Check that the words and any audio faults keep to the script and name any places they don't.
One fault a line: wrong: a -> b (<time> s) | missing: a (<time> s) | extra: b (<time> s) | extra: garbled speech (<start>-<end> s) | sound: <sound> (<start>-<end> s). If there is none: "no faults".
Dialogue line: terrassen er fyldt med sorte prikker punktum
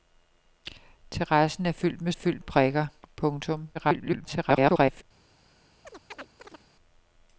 wrong: sorte -> fyldt (2.1 s)
extra: garbled speech (3.7-5.0 s)
sound: chirp (5.8-6.7 s)